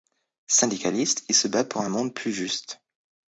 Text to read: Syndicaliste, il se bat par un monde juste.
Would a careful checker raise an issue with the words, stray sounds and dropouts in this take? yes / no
yes